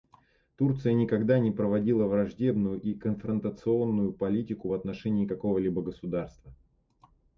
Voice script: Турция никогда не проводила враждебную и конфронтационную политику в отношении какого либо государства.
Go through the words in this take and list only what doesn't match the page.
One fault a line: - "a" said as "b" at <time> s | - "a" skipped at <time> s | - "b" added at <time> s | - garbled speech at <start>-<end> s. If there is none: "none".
none